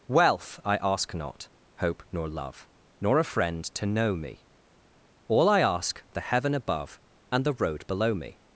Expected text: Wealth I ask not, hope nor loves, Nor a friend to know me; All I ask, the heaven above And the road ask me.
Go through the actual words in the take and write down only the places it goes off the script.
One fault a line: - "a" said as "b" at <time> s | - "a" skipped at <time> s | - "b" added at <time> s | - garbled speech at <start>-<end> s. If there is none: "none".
- "loves" said as "love" at 2.3 s
- "ask" said as "below" at 7.8 s